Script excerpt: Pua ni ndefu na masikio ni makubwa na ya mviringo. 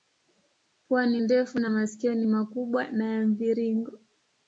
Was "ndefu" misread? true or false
false